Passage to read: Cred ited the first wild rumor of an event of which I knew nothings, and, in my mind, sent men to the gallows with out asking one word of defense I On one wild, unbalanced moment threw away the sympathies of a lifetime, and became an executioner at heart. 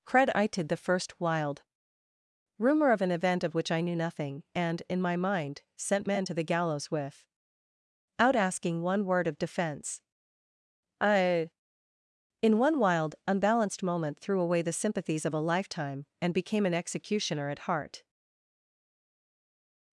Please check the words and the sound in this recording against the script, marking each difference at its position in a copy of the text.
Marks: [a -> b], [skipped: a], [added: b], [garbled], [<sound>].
Cred ited the first wild rumor of an event of which I knew [nothings, -> nothing] and, in my mind, sent men to the gallows with out asking one word of defense I [On -> In] one wild, unbalanced moment threw away the sympathies of a lifetime, and became an executioner at heart.